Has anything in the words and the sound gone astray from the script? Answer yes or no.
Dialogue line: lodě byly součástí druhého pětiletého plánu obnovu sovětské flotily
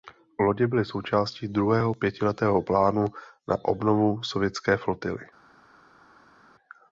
yes